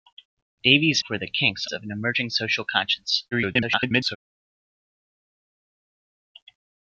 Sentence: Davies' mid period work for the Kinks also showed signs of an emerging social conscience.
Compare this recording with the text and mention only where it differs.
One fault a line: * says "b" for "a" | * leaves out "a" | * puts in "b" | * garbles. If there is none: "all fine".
* leaves out "mid period work"
* leaves out "also showed signs"
* garbles